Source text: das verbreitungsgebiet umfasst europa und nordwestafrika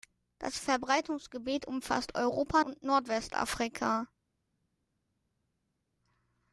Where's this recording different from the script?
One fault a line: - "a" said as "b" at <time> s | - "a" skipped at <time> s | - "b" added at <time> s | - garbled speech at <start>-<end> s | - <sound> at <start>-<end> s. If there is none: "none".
none